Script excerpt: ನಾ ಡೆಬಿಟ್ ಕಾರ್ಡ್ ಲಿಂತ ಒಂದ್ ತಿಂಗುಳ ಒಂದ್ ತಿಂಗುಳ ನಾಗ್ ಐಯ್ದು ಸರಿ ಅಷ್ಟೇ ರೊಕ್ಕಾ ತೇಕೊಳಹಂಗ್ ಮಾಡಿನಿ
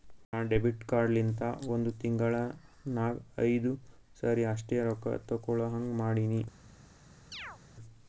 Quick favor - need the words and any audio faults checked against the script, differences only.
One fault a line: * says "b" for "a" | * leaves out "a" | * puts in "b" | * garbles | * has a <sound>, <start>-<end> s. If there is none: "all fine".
* leaves out "ಒಂದ್ ತಿಂಗುಳ"
* has a chirp, 7.3-7.6 s